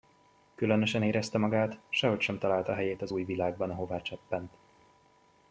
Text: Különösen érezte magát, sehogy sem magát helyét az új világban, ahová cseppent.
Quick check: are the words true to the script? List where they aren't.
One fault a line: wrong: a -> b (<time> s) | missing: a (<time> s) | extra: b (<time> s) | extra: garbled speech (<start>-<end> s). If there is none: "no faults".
wrong: magát -> találta (2.4 s)